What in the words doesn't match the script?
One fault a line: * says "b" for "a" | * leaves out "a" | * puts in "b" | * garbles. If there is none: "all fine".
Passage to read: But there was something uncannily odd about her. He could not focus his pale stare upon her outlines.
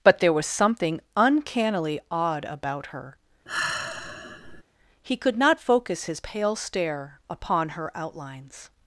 all fine